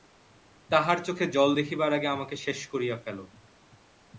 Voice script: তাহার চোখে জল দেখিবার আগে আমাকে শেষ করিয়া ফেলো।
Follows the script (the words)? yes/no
yes